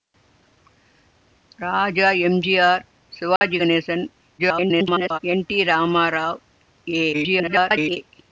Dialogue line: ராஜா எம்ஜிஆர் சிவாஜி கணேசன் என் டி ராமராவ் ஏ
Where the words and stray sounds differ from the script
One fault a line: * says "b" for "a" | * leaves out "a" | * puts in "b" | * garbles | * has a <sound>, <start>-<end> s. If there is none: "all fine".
* has a dropout, 3.4-3.4 s
* garbles
* garbles